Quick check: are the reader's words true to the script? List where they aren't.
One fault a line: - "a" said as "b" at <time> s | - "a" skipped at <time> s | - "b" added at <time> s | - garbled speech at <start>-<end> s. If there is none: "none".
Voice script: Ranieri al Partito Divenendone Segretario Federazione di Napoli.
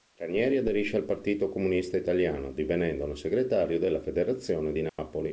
- "aderisce" added at 0.6 s
- "Comunista Italiano" added at 1.5 s
- "della" added at 3.8 s